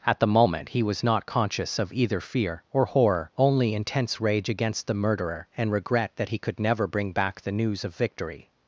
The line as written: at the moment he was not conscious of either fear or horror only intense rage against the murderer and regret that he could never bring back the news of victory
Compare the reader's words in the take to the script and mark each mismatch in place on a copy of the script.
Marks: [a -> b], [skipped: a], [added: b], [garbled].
at the moment he was not conscious of either fear or horror only intense rage against the murderer and regret that he could never bring back the news of victory